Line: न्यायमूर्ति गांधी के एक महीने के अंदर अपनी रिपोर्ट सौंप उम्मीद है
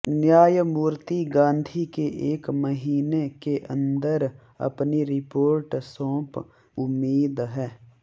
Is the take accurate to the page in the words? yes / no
yes